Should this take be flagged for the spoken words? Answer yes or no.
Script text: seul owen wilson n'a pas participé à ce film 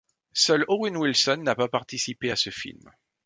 no